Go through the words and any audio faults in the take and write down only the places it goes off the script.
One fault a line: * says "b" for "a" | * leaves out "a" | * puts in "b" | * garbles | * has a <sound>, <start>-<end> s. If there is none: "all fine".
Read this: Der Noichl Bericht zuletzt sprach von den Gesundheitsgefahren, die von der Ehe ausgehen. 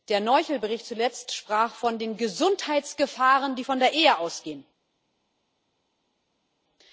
all fine